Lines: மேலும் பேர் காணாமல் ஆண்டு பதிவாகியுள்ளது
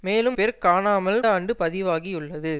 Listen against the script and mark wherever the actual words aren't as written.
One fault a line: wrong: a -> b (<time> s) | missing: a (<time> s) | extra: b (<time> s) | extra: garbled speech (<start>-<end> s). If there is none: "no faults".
no faults